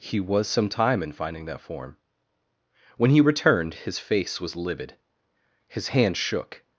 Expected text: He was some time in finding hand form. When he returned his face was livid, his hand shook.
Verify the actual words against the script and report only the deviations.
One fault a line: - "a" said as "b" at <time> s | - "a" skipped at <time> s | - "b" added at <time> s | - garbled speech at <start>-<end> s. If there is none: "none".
- "hand" said as "that" at 1.4 s